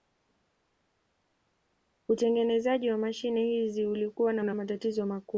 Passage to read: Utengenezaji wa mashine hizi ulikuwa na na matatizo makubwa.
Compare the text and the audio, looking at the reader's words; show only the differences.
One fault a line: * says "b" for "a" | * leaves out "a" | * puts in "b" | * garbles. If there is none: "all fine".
all fine